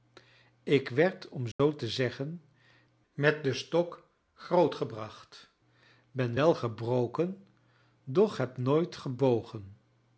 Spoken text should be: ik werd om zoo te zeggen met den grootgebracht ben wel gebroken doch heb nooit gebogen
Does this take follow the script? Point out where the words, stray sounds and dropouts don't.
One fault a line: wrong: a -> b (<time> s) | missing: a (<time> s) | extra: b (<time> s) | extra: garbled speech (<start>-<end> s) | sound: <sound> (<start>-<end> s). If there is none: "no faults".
sound: dropout (1.5-1.6 s)
extra: stok (3.5 s)